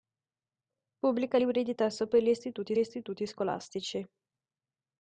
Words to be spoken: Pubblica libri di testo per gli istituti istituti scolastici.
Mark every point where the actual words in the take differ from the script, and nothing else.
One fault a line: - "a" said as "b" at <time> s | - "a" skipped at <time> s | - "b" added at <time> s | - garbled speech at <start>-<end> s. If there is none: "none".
none